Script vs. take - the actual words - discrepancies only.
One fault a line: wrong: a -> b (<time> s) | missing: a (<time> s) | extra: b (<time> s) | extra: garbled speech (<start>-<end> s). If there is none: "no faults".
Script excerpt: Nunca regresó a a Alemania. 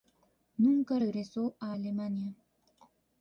missing: a (1.7 s)